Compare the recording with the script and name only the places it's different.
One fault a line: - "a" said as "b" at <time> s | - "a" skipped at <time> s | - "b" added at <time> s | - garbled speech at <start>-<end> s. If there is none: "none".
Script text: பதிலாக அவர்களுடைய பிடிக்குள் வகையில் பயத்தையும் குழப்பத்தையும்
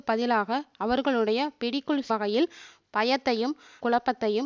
none